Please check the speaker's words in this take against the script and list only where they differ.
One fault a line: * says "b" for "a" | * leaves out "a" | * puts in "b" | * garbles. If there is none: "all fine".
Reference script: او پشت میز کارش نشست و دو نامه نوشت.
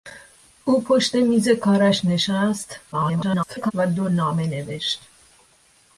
* garbles